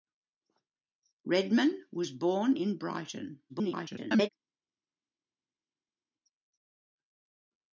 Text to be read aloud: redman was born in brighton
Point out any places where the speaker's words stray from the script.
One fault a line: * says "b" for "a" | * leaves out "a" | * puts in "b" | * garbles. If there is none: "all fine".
* garbles